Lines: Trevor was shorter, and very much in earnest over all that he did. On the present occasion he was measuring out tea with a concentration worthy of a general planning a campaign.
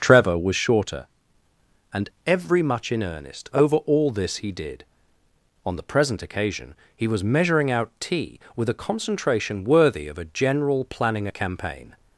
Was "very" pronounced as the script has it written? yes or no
no